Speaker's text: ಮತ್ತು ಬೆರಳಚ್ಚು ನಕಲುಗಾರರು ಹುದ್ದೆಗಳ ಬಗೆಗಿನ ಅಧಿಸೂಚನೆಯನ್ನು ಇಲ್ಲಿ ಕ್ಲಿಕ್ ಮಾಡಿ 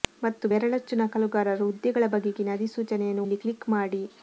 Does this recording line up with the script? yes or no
yes